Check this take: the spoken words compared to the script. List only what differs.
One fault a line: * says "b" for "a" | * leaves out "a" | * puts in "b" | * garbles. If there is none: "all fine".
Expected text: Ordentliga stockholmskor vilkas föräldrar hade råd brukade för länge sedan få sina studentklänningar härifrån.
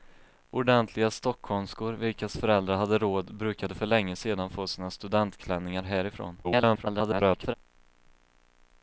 * garbles